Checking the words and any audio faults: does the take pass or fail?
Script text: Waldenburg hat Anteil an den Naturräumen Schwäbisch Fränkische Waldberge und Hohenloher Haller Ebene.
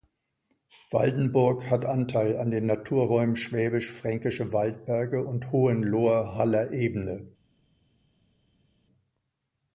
pass